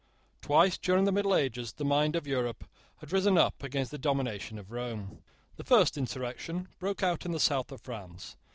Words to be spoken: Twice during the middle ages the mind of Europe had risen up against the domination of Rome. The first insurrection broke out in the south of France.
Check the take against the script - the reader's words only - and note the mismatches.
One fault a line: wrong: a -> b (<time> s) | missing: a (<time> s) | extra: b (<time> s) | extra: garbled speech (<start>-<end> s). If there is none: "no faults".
no faults